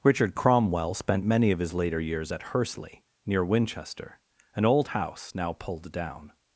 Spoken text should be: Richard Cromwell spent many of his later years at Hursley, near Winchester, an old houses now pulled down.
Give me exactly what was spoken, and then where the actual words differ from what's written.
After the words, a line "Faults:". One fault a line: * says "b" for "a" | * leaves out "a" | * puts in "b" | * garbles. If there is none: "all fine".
Richard Cromwell spent many of his later years at Hursley, near Winchester, an old house now pulled down.
Faults:
* says "house" for "houses"